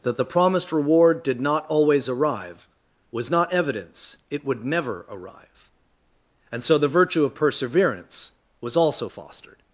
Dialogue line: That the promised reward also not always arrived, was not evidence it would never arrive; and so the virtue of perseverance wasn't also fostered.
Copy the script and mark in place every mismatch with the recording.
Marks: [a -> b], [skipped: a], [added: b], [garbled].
That the promised reward [also -> did] not always [arrived, -> arrive] was not evidence it would never arrive; and so the virtue of perseverance [wasn't -> was] also fostered.